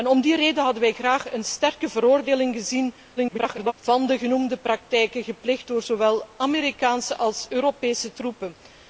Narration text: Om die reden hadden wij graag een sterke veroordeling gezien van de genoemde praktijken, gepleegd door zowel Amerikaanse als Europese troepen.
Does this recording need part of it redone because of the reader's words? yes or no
yes